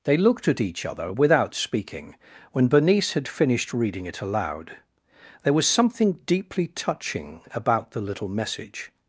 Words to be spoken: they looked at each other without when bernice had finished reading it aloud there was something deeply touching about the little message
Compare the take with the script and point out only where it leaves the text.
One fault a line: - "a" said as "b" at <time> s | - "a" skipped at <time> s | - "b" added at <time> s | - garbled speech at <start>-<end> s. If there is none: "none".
- "speaking" added at 1.5 s